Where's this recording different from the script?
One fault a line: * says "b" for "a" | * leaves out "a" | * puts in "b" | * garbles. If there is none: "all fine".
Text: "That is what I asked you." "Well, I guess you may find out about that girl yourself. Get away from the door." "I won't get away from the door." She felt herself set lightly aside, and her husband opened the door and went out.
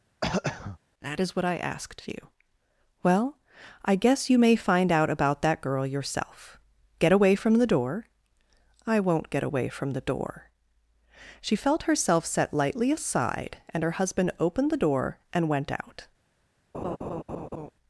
all fine